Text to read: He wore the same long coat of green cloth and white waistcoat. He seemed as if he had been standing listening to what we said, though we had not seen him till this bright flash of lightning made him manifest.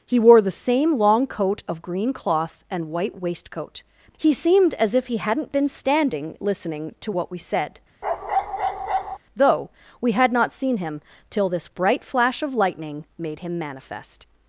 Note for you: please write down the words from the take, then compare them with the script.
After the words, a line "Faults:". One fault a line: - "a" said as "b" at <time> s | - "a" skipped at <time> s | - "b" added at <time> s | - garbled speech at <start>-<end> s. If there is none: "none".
He wore the same long coat of green cloth and white waistcoat. He seemed as if he hadn't been standing listening to what we said, though we had not seen him till this bright flash of lightning made him manifest.
Faults:
- "had" said as "hadn't" at 5.2 s